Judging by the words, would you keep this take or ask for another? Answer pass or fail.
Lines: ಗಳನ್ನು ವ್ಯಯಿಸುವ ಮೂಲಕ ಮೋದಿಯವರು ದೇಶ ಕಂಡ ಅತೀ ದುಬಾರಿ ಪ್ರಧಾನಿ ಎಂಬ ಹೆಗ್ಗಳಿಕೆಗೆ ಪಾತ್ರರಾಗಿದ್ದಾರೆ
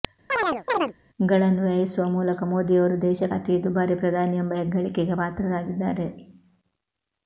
fail